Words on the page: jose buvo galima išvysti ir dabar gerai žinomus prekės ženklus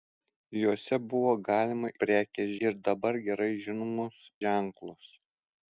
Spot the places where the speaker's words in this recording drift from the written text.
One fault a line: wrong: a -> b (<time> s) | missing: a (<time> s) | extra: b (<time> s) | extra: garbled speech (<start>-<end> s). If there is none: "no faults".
wrong: išvysti -> prekės (2.0 s)
missing: prekės (4.2 s)